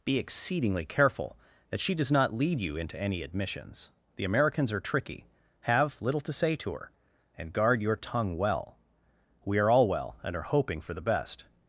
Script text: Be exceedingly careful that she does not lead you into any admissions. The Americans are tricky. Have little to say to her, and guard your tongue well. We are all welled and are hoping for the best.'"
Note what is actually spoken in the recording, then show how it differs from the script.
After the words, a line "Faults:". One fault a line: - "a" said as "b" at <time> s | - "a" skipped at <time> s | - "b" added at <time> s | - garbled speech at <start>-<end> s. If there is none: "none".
Be exceedingly careful that she does not lead you into any admissions. The Americans are tricky. Have little to say to her, and guard your tongue well. We are all well and are hoping for the best.'"
Faults:
- "welled" said as "well" at 9.9 s